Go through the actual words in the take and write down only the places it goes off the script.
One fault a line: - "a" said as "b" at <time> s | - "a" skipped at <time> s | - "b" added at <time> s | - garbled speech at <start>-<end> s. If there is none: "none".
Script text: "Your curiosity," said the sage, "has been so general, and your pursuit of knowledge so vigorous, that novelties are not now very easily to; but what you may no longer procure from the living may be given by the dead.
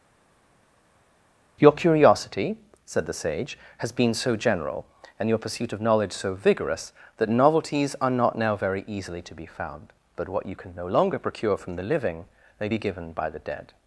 - "be found" added at 9.3 s
- "may" said as "can" at 10.5 s